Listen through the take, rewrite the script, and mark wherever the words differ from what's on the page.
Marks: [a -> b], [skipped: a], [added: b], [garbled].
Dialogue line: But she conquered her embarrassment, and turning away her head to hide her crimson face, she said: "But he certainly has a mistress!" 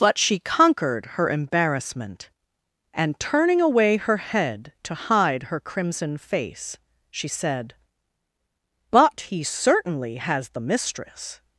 But she conquered her embarrassment, and turning away her head to hide her crimson face, she said: "But he certainly has [a -> the] mistress!"